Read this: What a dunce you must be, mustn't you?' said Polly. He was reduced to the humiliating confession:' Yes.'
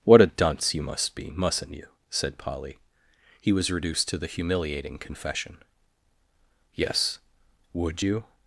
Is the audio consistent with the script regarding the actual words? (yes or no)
no